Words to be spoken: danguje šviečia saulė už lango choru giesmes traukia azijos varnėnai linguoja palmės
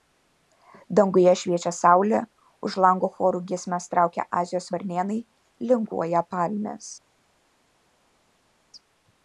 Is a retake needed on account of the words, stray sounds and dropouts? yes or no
no